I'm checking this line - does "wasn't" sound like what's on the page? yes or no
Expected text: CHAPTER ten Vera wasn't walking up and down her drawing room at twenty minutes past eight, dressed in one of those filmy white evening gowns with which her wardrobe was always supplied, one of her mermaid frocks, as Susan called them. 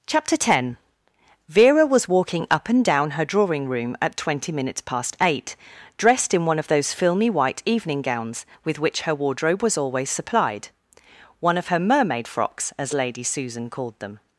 no